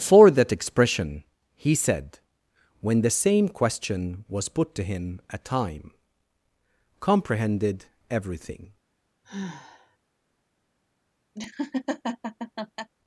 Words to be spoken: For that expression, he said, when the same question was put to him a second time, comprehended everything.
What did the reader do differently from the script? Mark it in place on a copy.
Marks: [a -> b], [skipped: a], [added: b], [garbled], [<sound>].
For that expression, he said, when the same question was put to him a [skipped: second] time, comprehended everything. [sigh] [laugh]